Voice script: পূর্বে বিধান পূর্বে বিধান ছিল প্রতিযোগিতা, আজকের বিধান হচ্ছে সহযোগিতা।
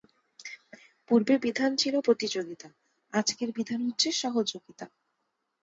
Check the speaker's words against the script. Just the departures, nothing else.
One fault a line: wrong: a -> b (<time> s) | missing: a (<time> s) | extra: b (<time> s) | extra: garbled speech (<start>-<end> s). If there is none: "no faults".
missing: পূর্বে বিধান (1.7 s)